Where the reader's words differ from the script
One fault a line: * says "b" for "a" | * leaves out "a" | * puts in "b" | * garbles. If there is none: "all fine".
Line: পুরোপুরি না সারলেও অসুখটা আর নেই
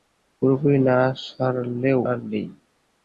* leaves out "অসুখটা"